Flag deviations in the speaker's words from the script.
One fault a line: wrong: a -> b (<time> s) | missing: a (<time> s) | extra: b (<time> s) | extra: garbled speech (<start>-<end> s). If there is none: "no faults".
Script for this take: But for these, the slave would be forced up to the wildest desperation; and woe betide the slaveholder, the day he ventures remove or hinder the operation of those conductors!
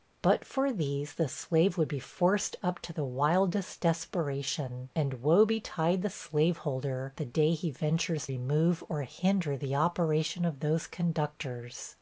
no faults